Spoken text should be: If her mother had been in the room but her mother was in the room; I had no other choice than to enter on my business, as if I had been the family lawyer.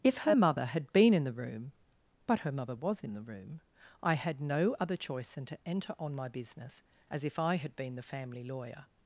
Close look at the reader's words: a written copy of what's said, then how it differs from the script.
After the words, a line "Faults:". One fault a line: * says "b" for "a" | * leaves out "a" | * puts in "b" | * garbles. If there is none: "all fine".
If her mother had been in the room but her mother was in the room; I had no other choice than to enter on my business, as if I had been the family lawyer.
Faults:
all fine